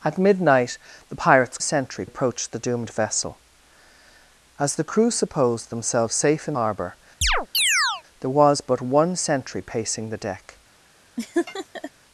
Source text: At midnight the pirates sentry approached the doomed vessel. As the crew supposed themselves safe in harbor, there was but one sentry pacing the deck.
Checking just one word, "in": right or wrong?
right